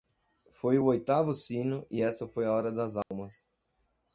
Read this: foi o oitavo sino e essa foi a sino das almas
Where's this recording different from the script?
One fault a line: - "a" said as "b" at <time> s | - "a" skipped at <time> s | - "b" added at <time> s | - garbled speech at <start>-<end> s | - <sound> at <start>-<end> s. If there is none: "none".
- "sino" said as "hora" at 2.5 s
- dropout at 3.0-3.1 s